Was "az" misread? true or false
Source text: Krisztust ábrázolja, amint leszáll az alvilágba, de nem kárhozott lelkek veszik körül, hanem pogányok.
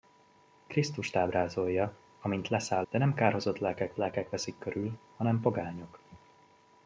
true